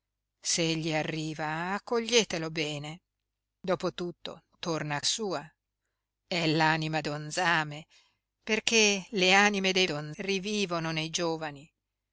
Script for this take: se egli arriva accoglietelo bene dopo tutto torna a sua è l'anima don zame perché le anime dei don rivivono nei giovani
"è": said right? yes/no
yes